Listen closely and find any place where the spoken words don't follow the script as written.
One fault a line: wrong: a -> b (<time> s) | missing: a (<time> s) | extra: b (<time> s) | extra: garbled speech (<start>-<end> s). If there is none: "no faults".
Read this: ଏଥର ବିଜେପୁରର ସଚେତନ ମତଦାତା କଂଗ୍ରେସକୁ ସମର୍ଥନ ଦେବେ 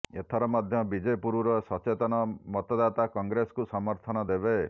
extra: ମଧ୍ୟ (0.5 s)